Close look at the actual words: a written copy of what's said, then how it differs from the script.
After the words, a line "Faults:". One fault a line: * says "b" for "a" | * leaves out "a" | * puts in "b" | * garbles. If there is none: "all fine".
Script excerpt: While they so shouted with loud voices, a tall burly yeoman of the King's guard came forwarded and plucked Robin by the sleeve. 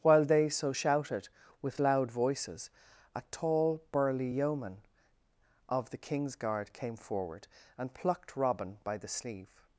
While they so shouted with loud voices, a tall burly yeoman of the King's guard came forward and plucked Robin by the sleeve.
Faults:
* says "forward" for "forwarded"